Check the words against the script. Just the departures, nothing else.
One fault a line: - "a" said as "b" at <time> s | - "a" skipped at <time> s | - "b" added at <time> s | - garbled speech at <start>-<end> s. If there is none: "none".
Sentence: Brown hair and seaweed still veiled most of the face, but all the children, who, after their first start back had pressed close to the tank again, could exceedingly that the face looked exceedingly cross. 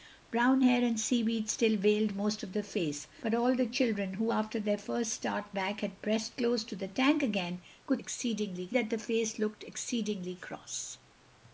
none